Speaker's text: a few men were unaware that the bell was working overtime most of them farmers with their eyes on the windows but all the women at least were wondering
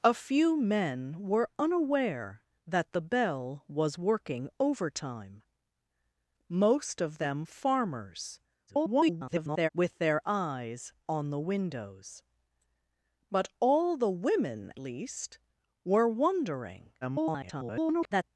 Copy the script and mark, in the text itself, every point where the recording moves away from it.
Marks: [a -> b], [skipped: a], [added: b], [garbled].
a few men were unaware that the bell was working overtime most of them farmers [garbled] with their eyes on the windows but all the women [skipped: at] least were wondering [garbled]